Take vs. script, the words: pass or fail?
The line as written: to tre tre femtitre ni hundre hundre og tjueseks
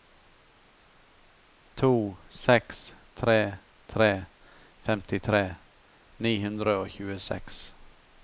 fail